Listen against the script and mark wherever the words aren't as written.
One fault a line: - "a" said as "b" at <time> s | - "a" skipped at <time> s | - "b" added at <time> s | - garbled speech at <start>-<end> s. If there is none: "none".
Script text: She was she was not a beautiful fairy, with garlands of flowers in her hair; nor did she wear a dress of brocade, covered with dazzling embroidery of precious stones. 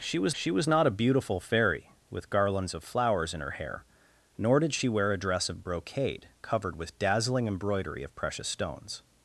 none